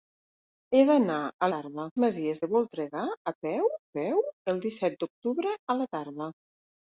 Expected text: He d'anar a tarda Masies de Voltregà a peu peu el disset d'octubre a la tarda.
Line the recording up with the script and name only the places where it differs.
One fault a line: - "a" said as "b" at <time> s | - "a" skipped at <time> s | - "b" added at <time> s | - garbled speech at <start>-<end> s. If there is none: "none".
none